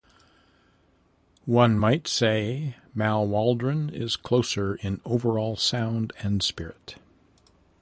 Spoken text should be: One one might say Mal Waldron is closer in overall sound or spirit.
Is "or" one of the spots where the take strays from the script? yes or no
yes